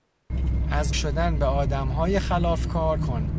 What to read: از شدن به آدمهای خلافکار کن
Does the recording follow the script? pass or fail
pass